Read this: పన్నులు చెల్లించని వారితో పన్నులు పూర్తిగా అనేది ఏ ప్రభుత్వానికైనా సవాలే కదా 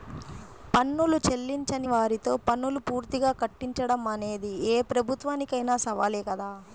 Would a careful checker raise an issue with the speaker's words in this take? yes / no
yes